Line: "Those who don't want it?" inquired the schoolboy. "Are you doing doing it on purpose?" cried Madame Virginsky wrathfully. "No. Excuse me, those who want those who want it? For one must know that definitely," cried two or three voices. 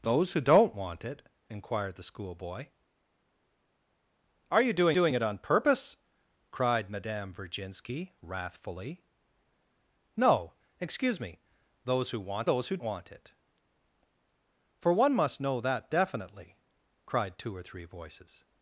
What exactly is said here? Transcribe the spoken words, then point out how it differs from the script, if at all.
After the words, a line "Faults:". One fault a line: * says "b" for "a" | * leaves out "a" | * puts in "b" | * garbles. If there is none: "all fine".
"Those who don't want it?" inquired the schoolboy. "Are you doing doing it on purpose?" cried Madame Virginsky wrathfully. "No. Excuse me, those who want those who want it? For one must know that definitely," cried two or three voices.
Faults:
all fine